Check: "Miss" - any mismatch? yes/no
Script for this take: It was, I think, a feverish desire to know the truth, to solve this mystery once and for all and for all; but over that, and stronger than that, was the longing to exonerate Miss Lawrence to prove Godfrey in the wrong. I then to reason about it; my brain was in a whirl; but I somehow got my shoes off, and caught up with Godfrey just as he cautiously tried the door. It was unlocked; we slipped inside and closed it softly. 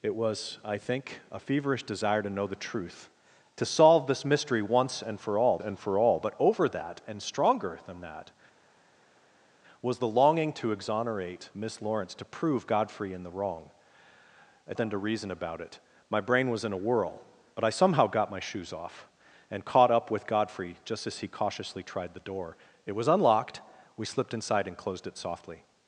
no